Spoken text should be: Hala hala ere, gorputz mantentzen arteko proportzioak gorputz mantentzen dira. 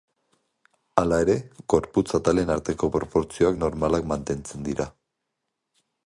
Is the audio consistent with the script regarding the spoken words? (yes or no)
no